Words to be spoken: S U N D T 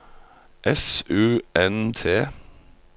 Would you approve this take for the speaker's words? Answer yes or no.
no